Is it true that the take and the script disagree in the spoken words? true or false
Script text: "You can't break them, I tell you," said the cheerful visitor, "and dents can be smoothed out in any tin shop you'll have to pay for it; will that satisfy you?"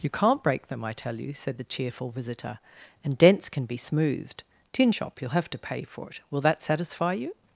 true